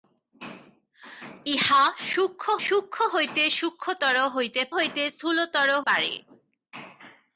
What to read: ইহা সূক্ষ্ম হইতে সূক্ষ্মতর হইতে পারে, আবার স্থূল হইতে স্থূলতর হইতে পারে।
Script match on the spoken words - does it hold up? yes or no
no